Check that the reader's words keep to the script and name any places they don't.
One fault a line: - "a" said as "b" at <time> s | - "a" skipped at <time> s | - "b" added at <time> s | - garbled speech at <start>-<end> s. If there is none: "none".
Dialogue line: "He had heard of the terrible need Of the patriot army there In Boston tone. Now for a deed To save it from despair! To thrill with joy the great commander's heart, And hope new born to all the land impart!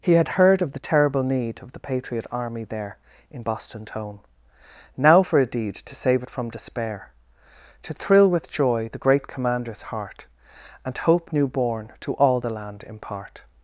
none